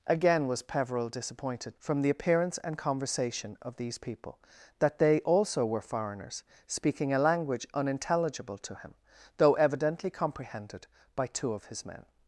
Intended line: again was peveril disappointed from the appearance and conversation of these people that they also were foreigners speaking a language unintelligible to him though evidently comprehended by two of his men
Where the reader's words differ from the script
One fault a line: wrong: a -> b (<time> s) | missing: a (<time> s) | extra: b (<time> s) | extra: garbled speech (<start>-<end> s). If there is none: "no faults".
no faults